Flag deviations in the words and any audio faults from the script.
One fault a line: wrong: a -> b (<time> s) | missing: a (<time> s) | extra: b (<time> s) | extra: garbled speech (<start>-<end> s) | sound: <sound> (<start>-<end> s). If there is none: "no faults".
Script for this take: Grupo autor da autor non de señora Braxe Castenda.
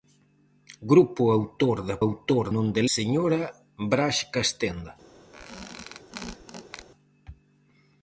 sound: squeak (5.3-6.9 s)